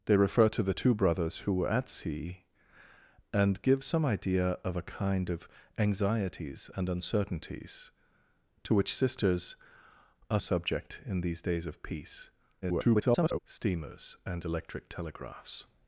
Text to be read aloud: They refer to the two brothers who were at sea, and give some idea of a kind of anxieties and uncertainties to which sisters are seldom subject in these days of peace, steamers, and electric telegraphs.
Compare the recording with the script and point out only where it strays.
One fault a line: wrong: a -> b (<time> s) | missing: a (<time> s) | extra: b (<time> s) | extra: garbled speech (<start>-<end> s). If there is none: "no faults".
missing: seldom (10.4 s)
extra: garbled speech (12.6-13.4 s)